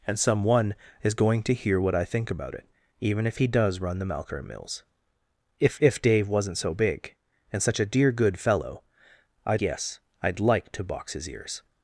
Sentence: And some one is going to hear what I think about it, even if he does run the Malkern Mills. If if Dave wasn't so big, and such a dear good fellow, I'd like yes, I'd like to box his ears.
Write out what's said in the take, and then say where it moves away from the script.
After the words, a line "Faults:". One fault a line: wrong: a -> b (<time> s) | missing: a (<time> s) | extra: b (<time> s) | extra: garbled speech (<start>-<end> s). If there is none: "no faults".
And some one is going to hear what I think about it, even if he does run the Malkern Mills. If if Dave wasn't so big, and such a dear good fellow, I'd yes, I'd like to box his ears.
Faults:
missing: like (9.6 s)